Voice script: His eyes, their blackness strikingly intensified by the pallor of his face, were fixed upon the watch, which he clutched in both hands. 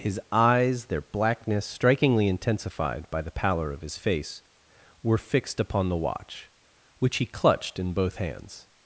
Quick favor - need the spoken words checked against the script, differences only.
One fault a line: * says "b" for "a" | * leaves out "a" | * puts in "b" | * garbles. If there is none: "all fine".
all fine